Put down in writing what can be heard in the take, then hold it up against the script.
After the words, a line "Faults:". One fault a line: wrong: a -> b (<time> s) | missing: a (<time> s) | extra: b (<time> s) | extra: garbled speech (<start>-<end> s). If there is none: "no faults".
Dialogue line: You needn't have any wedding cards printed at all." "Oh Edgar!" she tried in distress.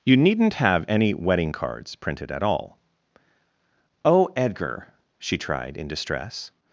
You needn't have any wedding cards printed at all." "Oh Edgar!" she tried in distress.
Faults:
no faults